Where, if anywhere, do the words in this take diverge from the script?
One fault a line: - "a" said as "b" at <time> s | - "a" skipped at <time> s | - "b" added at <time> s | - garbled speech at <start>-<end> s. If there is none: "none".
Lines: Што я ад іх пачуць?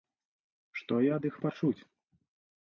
none